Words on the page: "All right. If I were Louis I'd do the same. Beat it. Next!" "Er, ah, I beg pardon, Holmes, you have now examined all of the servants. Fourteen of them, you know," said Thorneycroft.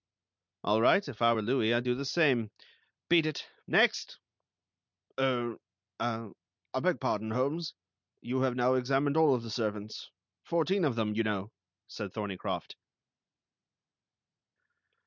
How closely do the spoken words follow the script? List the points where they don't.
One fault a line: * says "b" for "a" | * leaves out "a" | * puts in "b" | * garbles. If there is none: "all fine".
all fine